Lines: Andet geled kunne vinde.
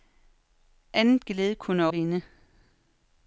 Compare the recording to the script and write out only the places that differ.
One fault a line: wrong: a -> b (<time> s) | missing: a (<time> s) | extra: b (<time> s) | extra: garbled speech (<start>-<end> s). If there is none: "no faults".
no faults